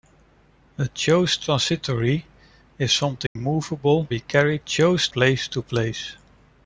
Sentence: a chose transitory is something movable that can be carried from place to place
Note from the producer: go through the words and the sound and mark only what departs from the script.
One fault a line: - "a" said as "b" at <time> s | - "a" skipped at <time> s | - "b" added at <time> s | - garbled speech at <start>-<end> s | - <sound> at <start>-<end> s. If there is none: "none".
- dropout at 3.3-3.4 s
- "that can" skipped at 4.1 s
- "from" said as "chose" at 4.6 s